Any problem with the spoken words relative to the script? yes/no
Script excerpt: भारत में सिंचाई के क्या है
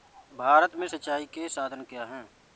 yes